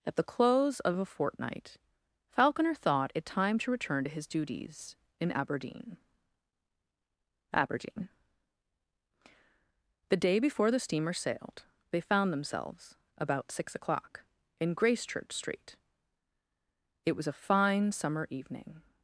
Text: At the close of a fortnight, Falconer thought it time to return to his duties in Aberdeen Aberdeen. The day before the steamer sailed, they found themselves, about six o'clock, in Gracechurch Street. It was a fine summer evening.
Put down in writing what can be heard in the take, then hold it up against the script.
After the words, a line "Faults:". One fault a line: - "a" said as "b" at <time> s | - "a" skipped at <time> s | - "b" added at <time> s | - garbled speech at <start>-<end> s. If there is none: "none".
At the close of a fortnight, Falconer thought it time to return to his duties in Aberdeen Aberdeen. The day before the steamer sailed, they found themselves, about six o'clock, in Gracechurch Street. It was a fine summer evening.
Faults:
none